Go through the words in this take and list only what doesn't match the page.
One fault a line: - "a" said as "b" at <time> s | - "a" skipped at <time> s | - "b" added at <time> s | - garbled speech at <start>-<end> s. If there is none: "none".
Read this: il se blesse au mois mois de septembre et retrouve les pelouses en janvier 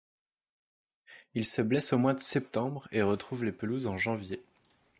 - "mois" skipped at 2.1 s